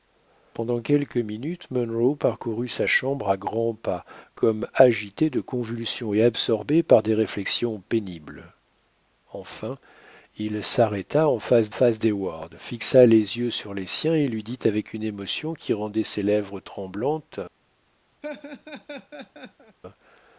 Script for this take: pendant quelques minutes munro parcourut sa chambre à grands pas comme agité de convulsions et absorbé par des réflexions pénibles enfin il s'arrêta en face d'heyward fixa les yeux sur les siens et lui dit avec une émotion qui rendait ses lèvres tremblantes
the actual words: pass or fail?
fail